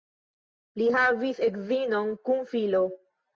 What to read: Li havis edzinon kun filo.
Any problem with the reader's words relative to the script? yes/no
no